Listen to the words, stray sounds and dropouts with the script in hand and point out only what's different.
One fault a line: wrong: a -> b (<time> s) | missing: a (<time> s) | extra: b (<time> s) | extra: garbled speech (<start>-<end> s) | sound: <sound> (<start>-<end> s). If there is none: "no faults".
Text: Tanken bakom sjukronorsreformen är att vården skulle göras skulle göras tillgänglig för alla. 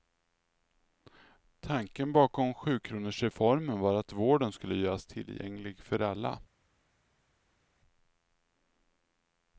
wrong: är -> var (3.8 s)
missing: skulle göras (5.0 s)